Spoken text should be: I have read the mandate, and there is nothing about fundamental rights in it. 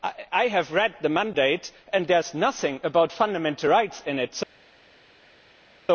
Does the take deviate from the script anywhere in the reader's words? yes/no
no